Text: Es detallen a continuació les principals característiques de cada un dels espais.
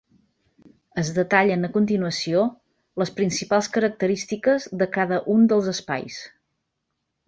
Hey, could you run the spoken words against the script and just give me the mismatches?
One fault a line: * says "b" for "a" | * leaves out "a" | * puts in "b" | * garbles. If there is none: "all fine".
all fine